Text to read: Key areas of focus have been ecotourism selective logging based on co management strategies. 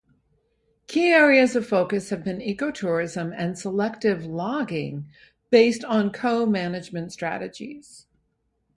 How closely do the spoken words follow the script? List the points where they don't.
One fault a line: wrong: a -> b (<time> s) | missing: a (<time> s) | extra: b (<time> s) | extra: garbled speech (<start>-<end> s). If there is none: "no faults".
extra: and (3.4 s)